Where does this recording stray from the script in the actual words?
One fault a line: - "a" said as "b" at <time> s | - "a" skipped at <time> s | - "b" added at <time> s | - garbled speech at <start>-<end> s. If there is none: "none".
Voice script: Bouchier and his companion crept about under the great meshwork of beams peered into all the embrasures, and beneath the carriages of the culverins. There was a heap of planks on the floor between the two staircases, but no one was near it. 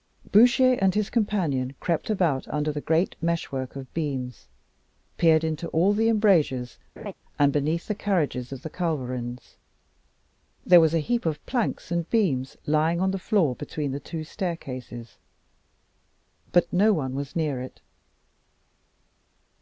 - "and beams lying" added at 11.9 s